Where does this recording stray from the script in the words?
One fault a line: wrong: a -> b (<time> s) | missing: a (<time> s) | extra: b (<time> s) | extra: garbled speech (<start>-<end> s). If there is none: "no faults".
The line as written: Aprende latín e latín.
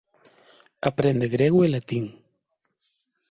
wrong: latín -> grego (1.4 s)